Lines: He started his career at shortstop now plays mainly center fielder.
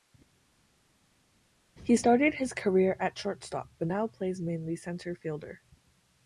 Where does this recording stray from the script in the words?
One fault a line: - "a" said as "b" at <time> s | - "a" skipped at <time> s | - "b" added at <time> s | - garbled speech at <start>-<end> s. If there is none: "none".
- "but" added at 3.8 s